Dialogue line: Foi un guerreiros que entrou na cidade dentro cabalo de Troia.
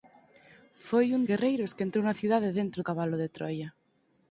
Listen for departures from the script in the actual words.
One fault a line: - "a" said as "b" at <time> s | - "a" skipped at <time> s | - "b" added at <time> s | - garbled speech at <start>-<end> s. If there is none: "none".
none